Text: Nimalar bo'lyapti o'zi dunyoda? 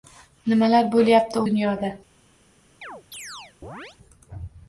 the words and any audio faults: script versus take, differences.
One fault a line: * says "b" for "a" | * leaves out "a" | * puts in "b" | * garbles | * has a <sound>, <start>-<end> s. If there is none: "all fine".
* leaves out "o'zi"
* has a chirp, 2.8-4.0 s